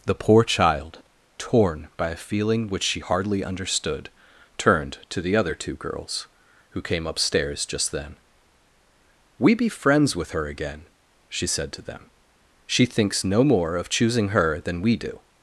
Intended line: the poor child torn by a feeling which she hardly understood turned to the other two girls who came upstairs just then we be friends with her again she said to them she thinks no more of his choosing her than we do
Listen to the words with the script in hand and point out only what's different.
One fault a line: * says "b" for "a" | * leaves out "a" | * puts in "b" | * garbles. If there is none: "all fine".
* leaves out "his"